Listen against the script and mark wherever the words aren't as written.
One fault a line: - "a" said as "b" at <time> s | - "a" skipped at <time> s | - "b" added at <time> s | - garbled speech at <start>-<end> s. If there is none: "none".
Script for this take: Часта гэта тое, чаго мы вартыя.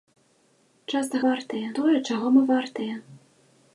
- "гэта" said as "вартыя" at 1.3 s